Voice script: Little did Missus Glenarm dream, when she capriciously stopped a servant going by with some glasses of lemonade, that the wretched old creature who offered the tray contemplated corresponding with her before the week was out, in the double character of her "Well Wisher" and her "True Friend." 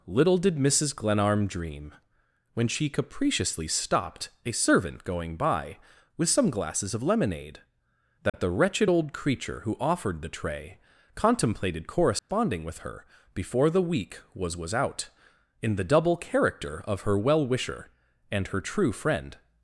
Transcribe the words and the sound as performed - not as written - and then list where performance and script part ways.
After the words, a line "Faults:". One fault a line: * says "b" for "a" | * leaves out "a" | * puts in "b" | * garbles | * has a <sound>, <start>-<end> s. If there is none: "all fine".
Little did Missus Glenarm dream, when she capriciously stopped a servant going by with some glasses of lemonade, that the wretched old creature who offered the tray contemplated corresponding with her before the week was was out, in the double character of her "Well Wisher" and her "True Friend."
Faults:
* has a dropout, 8.3-8.3 s
* has a dropout, 12.2-12.3 s
* puts in "was"